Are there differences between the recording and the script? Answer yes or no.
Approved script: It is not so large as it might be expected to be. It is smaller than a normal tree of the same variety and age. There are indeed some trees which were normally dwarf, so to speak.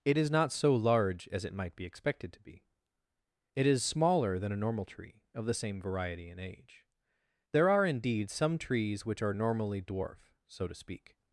yes